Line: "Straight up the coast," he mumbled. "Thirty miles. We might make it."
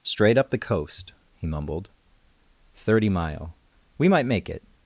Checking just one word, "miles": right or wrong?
wrong